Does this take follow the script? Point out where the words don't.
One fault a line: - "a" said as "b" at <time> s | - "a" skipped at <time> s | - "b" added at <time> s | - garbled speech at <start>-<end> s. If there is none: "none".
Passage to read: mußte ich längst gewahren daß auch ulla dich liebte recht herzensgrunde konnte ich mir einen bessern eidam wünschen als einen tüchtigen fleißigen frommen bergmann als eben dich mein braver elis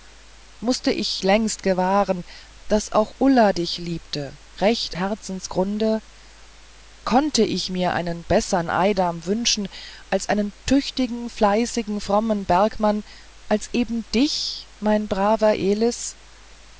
none